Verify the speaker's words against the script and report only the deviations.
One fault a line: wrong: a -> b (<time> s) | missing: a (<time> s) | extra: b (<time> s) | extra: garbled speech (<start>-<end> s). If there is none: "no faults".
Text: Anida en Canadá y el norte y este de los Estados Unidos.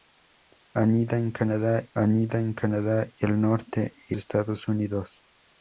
extra: anida en Canadá (1.9 s)
missing: este de los (4.2 s)